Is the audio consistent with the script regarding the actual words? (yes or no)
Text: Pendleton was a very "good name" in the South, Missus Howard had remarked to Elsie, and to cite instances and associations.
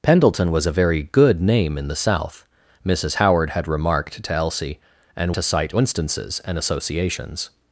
yes